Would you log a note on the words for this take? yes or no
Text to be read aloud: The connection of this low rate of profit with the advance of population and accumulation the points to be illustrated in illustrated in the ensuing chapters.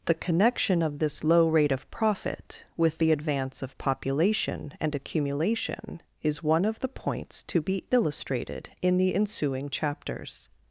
yes